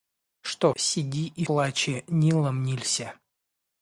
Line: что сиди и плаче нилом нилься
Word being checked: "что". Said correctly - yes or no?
yes